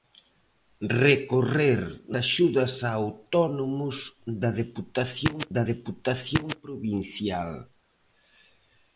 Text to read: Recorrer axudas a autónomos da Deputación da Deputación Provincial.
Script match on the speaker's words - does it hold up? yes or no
yes